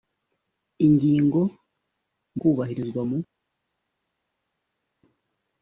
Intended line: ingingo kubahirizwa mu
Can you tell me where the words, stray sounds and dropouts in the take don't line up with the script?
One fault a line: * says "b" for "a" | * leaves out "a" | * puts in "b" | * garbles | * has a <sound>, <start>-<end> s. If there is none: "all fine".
all fine